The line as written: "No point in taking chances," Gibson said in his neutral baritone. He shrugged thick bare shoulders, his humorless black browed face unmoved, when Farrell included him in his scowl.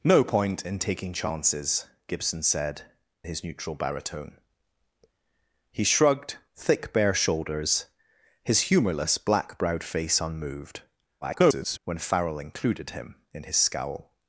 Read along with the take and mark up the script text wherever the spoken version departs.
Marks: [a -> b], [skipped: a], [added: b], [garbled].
"No point in taking chances," Gibson said [skipped: in] his neutral baritone. He shrugged thick bare shoulders, his humorless black browed face unmoved, [garbled] when Farrell included him in his scowl.